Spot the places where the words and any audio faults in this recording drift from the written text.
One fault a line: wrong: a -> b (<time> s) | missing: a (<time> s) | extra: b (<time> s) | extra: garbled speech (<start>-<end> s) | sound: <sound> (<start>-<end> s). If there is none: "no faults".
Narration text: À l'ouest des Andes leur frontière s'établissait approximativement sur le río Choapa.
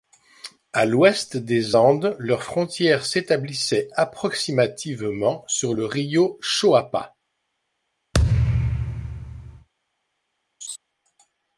sound: thud (8.1-9.7 s)
sound: laugh (10.6-10.8 s)